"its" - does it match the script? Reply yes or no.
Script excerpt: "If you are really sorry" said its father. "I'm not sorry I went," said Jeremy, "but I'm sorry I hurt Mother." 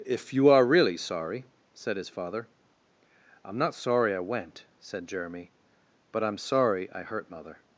no